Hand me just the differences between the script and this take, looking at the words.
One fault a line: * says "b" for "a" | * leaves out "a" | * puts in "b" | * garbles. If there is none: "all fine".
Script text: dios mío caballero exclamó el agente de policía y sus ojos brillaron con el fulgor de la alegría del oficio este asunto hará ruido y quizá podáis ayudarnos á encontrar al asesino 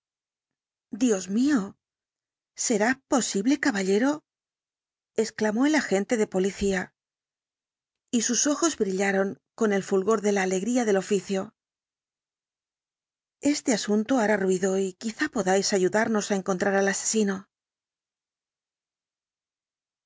* puts in "será posible"